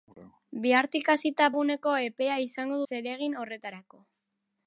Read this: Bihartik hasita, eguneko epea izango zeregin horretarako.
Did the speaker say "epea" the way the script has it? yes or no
yes